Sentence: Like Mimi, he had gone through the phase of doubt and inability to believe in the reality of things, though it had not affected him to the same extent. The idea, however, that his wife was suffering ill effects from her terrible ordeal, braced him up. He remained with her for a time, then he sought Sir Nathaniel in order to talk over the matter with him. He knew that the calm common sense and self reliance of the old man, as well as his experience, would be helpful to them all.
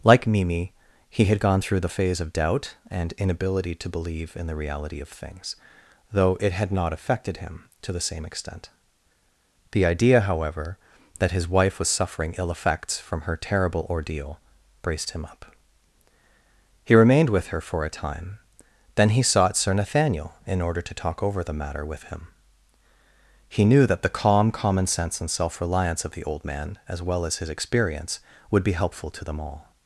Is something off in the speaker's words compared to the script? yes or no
no